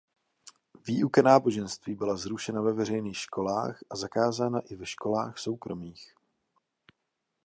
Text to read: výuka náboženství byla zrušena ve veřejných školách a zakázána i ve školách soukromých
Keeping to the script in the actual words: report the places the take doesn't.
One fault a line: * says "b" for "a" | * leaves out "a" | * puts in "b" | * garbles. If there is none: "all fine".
all fine